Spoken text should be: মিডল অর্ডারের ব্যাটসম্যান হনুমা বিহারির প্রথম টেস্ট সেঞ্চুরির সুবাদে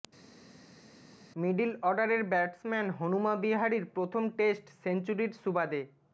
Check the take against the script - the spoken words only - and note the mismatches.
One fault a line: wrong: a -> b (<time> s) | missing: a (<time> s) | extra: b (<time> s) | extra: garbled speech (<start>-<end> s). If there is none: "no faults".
no faults